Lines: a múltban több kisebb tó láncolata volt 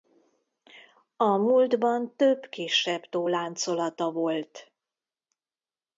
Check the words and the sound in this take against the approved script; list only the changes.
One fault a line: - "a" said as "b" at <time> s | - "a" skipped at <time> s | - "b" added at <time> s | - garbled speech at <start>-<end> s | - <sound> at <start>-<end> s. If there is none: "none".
none